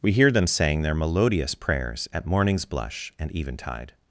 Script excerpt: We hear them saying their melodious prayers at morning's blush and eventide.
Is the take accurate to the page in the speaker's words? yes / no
yes